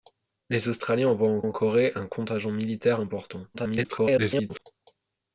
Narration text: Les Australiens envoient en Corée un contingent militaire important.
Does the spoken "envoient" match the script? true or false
true